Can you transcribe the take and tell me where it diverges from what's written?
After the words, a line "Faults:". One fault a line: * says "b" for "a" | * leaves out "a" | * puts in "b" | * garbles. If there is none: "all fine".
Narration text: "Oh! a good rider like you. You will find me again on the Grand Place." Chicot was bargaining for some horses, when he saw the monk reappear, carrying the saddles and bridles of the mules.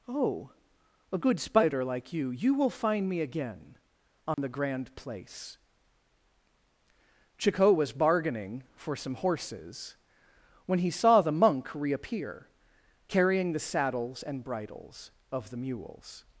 "Oh! a good spider like you. You will find me again on the Grand Place." Chicot was bargaining for some horses, when he saw the monk reappear, carrying the saddles and bridles of the mules.
Faults:
* says "spider" for "rider"